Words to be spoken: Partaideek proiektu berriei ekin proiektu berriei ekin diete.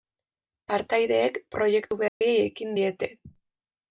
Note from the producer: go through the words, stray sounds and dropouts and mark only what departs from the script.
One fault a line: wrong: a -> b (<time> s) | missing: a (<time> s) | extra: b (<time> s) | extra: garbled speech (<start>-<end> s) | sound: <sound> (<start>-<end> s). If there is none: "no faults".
sound: dropout (2.1-2.2 s)
missing: proiektu berriei ekin (2.8 s)